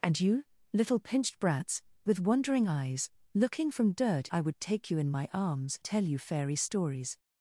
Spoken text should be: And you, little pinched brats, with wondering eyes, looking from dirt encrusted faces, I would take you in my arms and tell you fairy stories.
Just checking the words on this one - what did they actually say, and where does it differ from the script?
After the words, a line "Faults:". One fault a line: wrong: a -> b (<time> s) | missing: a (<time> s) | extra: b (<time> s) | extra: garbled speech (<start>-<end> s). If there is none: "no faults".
And you, little pinched brats, with wondering eyes, looking from dirt I would take you in my arms tell you fairy stories.
Faults:
missing: encrusted faces (4.3 s)
missing: and (5.8 s)